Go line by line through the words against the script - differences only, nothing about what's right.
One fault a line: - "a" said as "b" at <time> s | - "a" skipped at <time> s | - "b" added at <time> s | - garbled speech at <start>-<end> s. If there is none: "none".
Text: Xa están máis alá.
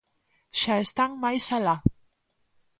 none